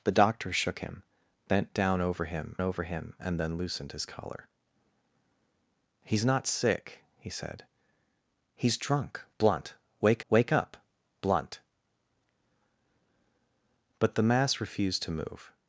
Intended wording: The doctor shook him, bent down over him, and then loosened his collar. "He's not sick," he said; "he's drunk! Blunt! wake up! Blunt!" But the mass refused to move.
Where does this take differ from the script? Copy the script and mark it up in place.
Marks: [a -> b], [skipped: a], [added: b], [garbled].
The doctor shook him, bent down over him, [added: over him] and then loosened his collar. "He's not sick," he said; "he's drunk! Blunt! wake [added: wake] up! Blunt!" But the mass refused to move.